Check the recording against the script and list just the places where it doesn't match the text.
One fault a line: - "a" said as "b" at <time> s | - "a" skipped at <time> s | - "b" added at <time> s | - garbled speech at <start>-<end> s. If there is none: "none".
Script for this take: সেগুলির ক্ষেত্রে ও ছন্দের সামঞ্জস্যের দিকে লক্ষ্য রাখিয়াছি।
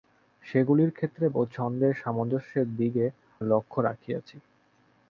none